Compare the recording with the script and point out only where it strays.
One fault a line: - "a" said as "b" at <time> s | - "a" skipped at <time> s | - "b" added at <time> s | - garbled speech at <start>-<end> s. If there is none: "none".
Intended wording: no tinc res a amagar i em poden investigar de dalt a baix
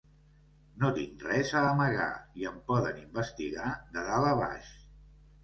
none